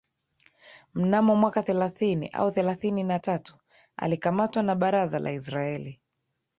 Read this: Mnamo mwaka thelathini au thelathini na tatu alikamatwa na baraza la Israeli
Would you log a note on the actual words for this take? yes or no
no